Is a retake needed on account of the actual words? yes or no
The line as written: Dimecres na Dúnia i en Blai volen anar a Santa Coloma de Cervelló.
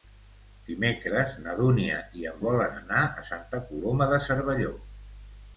yes